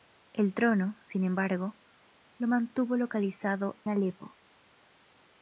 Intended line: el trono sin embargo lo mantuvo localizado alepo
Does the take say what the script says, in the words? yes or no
yes